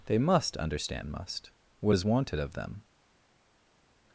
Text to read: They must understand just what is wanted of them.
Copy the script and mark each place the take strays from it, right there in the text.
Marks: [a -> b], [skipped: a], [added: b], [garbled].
They must understand [just -> must] what is wanted of them.